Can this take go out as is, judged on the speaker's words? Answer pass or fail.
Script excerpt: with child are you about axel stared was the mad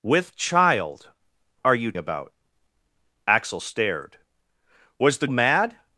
pass